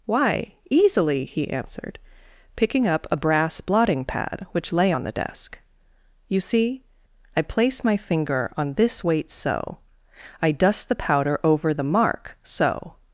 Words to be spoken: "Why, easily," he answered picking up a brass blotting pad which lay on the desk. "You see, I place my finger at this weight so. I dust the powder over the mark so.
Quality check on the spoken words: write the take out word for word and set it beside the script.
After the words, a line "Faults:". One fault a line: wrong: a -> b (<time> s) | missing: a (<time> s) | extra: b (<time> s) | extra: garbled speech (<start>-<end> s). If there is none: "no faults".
"Why, easily," he answered picking up a brass blotting pad which lay on the desk. "You see, I place my finger on this weight so. I dust the powder over the mark so.
Faults:
wrong: at -> on (8.6 s)